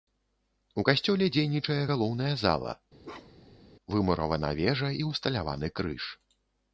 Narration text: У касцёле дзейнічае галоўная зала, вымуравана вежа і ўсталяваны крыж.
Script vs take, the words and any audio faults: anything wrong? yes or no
yes